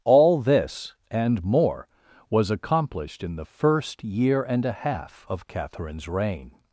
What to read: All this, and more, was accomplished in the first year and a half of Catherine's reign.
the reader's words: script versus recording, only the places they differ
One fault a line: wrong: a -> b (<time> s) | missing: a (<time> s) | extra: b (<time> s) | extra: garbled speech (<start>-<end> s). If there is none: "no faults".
no faults